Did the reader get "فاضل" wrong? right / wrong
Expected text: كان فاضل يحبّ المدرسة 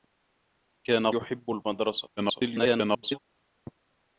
wrong